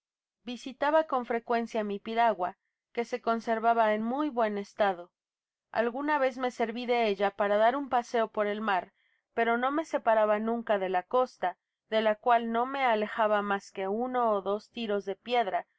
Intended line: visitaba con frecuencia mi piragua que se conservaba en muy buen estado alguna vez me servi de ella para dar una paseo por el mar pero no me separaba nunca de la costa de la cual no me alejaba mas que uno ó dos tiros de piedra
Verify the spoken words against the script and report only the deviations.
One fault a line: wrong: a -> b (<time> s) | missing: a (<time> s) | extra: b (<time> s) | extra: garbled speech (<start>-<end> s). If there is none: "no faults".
wrong: una -> un (7.7 s)